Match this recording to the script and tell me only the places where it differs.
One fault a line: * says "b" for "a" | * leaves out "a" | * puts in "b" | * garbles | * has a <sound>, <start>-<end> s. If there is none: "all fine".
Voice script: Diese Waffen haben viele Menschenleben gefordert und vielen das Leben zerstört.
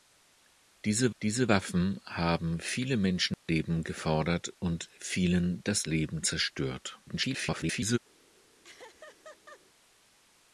* puts in "diese"
* has a dropout, 3.3-3.5 s
* garbles
* has a laugh, 8.6-9.6 s